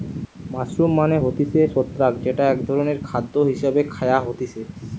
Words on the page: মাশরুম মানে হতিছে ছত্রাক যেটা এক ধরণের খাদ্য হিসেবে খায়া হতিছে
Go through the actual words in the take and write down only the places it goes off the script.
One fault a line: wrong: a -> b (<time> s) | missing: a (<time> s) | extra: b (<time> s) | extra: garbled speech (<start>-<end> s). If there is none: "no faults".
no faults